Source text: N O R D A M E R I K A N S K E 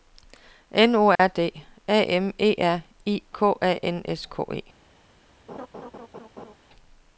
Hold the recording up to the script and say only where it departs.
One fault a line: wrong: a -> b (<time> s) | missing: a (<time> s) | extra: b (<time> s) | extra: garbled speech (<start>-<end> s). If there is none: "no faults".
no faults